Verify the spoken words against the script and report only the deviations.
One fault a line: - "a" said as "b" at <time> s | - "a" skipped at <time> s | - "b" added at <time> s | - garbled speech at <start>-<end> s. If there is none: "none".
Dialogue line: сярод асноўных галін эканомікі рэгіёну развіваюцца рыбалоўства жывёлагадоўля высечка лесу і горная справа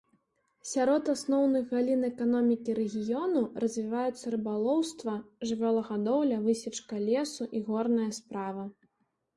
none